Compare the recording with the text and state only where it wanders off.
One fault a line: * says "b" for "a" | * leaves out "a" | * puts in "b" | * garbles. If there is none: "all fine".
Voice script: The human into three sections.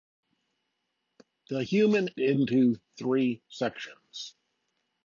all fine